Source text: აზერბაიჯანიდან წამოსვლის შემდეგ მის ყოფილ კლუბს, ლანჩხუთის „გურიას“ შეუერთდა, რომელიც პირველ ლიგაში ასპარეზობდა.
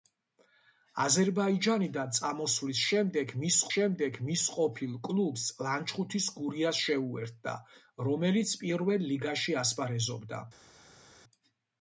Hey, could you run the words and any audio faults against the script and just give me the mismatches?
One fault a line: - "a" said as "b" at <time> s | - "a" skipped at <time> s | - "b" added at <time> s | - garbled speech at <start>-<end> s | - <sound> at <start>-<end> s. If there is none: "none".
- "შემდეგ მის" added at 3.7 s